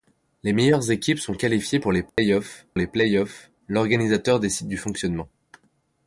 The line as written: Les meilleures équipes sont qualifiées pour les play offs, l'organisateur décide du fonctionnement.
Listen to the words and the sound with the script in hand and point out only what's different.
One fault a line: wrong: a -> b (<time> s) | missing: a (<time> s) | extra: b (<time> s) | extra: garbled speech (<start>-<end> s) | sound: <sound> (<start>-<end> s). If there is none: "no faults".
sound: dropout (2.1-2.2 s)
extra: les play offs (2.8 s)